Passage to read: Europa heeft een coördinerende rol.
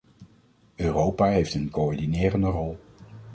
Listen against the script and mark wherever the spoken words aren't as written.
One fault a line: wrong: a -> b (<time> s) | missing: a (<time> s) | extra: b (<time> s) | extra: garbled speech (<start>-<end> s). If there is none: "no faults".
no faults